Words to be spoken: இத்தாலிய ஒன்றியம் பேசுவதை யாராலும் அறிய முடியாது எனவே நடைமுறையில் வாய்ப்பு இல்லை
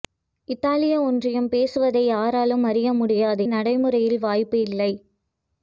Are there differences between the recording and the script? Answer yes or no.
yes